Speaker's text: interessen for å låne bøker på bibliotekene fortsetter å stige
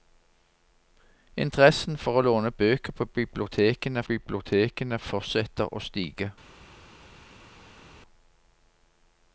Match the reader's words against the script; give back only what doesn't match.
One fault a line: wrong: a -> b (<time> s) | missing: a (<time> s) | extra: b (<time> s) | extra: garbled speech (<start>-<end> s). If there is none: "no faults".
extra: bibliotekene (4.1 s)